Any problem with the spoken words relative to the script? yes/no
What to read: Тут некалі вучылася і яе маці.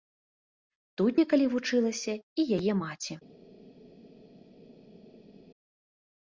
no